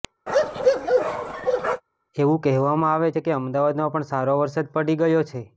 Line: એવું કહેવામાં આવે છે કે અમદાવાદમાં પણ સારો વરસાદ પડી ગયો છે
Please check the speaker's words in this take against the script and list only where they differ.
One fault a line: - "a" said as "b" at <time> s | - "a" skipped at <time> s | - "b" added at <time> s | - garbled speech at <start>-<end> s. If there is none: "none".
none